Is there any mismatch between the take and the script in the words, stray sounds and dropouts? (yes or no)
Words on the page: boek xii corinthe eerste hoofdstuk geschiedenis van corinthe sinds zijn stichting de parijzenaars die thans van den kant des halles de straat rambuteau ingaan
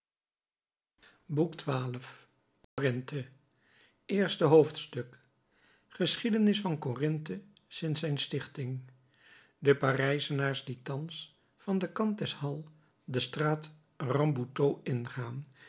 yes